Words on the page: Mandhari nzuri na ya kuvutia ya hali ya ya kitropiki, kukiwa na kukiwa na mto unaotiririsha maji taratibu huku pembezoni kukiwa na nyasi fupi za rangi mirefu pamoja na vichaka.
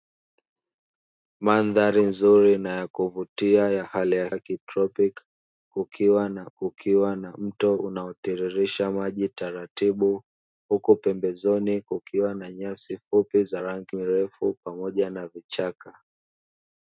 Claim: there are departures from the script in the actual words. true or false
false